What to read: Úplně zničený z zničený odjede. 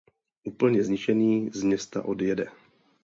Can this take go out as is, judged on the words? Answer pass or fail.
fail